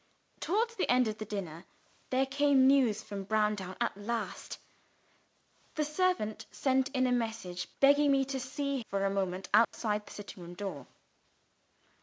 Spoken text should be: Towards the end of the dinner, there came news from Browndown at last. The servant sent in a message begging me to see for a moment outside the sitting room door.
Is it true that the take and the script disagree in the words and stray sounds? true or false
true